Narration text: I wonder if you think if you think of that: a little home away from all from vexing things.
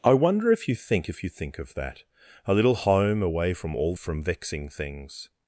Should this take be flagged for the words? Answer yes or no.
no